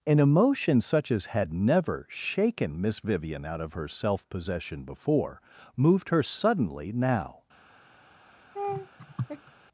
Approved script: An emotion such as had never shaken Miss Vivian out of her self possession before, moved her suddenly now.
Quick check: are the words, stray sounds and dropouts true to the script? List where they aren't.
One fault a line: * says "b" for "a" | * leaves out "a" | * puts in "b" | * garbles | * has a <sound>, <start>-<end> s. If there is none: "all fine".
* has a laugh, 8.5-9.5 s